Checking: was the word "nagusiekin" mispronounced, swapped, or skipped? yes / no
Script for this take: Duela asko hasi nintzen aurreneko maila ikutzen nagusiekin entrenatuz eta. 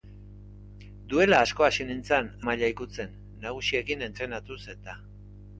no